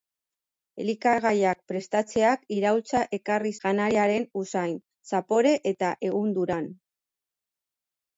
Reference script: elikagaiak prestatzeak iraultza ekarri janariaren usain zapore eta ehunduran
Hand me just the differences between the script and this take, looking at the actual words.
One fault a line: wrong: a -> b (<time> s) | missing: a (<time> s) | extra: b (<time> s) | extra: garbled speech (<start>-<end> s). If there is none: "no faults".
no faults